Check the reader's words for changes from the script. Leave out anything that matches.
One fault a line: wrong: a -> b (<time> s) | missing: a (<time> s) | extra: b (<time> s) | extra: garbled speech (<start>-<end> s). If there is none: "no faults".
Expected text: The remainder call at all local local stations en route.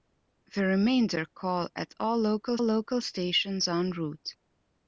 no faults